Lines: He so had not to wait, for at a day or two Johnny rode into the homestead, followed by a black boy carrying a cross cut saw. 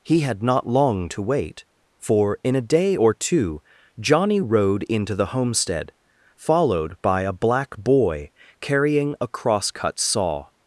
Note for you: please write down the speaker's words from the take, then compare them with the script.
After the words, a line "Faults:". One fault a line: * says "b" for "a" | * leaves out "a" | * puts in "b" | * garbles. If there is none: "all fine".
He had not long to wait, for in a day or two Johnny rode into the homestead, followed by a black boy carrying a cross cut saw.
Faults:
* leaves out "so"
* puts in "long"
* says "in" for "at"